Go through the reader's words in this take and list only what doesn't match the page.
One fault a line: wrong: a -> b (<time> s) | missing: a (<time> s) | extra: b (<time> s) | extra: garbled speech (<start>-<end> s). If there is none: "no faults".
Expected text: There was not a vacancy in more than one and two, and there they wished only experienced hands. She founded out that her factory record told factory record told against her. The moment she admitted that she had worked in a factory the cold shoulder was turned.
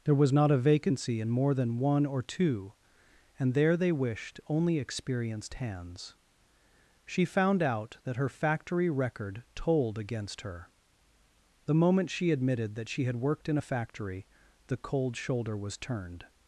wrong: and -> or (2.1 s)
wrong: founded -> found (7.2 s)
missing: factory record told (10.0 s)